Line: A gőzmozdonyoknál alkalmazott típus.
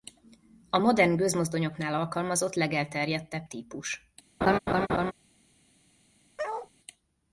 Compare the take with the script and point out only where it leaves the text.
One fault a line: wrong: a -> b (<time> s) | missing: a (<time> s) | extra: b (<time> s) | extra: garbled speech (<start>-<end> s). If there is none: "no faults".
extra: modern (0.8 s)
extra: legelterjedtebb (2.5 s)